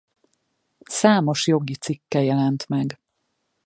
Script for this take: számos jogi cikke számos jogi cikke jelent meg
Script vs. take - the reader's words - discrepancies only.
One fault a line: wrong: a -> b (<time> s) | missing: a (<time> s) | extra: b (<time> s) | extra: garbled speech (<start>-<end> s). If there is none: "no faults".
missing: számos jogi cikke (2.2 s)